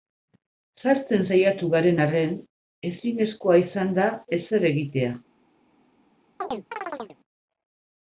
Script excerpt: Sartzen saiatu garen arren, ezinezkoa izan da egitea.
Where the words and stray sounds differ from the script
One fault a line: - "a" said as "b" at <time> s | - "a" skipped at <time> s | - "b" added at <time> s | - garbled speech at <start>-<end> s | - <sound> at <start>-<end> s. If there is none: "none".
- "ezer" added at 4.4 s
- chirp at 6.4-7.2 s